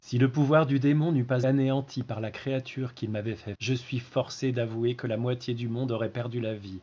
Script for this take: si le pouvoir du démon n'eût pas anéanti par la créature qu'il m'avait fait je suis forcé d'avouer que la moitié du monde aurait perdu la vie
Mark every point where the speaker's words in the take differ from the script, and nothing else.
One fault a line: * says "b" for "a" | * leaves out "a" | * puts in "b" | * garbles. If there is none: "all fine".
all fine